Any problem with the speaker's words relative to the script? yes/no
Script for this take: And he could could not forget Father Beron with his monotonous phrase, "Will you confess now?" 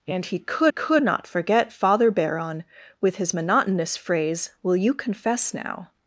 no